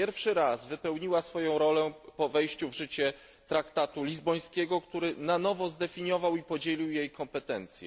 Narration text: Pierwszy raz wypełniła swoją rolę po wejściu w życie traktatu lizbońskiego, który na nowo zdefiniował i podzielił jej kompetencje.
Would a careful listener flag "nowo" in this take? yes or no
no